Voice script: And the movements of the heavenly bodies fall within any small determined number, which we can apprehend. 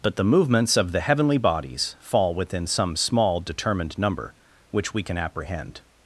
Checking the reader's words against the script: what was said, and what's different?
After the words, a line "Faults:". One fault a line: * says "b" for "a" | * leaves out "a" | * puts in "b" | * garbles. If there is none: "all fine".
But the movements of the heavenly bodies fall within some small determined number, which we can apprehend.
Faults:
* says "But" for "And"
* says "some" for "any"